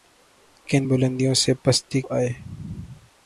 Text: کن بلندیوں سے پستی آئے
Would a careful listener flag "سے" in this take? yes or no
no